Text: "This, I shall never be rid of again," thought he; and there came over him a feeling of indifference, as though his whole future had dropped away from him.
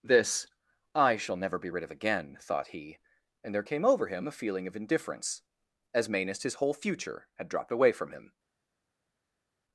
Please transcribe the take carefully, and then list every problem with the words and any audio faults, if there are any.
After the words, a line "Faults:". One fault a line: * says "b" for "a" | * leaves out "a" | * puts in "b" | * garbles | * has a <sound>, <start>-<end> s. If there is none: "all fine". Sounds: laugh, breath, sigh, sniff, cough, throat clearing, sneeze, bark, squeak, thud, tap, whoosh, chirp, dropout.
"This, I shall never be rid of again," thought he; and there came over him a feeling of indifference, as mainest his whole future had dropped away from him.
Faults:
* says "mainest" for "though"